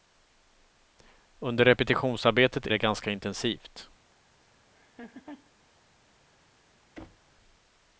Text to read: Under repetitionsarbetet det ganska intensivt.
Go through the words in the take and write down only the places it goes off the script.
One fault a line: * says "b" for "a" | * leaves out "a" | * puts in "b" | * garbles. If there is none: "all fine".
all fine